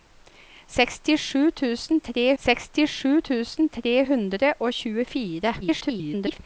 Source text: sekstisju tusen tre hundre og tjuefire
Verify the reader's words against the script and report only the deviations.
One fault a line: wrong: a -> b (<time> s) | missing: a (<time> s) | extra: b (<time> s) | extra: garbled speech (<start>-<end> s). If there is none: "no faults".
extra: sekstisju tusen tre (2.4 s)
extra: garbled speech (5.6-6.4 s)